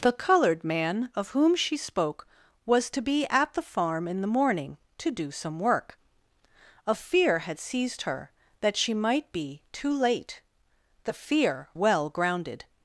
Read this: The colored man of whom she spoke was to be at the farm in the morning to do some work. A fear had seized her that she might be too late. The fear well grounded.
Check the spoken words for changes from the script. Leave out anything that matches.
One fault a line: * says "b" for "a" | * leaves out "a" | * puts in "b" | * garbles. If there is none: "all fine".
all fine